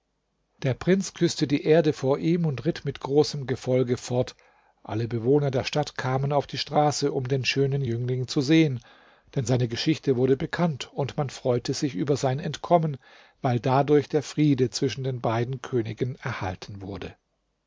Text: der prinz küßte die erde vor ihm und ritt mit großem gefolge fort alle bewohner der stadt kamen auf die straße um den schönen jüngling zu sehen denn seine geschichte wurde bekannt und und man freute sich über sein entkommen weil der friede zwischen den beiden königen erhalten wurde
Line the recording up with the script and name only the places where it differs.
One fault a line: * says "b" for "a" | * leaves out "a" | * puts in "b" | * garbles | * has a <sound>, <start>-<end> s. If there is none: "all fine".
* leaves out "und"
* puts in "dadurch"